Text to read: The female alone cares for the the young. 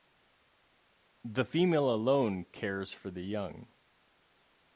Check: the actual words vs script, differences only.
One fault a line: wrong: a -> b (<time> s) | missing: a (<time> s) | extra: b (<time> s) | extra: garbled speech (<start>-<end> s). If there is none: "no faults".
missing: the (3.2 s)